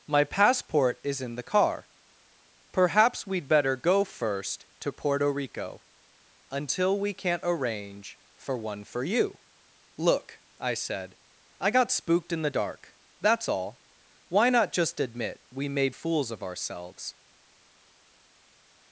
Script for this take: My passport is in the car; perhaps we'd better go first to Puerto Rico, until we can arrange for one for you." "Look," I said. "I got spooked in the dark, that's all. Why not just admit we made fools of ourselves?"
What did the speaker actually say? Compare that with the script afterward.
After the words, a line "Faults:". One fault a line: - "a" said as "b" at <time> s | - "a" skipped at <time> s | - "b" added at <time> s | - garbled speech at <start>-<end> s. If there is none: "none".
My passport is in the car; perhaps we'd better go first to Puerto Rico, until we can't arrange for one for you." "Look," I said. "I got spooked in the dark, that's all. Why not just admit we made fools of ourselves?"
Faults:
- "can" said as "can't" at 7.1 s